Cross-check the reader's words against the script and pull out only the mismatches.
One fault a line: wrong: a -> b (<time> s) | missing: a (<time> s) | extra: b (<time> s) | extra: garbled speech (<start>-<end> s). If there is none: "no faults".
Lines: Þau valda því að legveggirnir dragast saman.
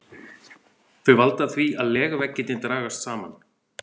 no faults